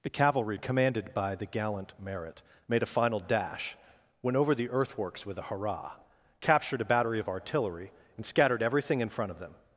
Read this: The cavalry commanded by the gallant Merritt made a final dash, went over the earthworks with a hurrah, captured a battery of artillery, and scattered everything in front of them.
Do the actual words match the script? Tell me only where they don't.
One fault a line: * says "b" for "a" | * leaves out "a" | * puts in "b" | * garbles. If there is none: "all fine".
all fine